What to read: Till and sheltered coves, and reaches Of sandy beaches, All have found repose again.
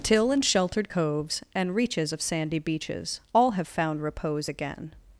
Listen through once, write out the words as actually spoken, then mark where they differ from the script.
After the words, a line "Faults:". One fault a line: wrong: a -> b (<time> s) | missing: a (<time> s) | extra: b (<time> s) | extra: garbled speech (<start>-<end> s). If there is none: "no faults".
Till and sheltered coves, and reaches Of sandy beaches, All have found repose again.
Faults:
no faults